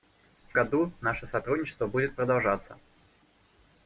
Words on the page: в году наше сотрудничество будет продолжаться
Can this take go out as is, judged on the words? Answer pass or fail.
pass